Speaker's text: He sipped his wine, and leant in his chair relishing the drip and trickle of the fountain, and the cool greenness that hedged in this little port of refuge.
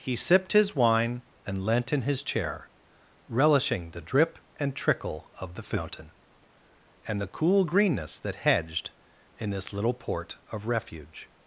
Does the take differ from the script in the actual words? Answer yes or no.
no